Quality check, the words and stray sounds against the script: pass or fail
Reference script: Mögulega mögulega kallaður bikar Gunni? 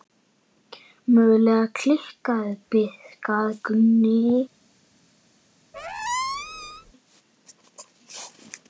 fail